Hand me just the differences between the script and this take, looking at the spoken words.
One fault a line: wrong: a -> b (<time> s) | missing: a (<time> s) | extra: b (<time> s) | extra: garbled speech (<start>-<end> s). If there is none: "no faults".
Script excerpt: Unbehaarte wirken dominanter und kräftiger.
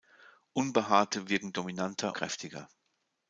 missing: und (2.2 s)